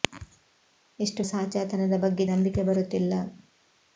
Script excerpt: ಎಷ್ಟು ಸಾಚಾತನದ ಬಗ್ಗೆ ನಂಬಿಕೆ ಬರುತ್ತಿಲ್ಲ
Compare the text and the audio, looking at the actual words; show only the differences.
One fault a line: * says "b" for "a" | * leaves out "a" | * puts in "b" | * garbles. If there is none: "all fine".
all fine